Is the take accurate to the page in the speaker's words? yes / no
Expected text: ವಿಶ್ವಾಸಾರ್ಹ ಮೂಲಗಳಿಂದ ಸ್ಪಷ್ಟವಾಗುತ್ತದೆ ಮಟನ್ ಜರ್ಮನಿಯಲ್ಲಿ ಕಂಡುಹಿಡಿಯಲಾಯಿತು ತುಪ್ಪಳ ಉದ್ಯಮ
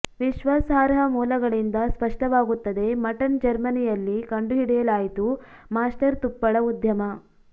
no